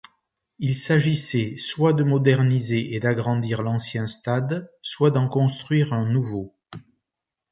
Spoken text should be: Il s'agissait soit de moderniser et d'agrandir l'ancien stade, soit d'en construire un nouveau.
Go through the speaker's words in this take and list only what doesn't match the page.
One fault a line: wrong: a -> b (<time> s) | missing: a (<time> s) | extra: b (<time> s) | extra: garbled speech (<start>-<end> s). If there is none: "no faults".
no faults